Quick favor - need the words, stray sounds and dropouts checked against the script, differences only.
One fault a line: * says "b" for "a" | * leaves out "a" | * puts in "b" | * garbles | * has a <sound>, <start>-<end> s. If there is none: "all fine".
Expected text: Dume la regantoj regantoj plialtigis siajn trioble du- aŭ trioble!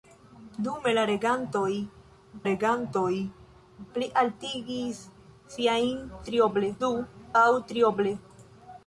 all fine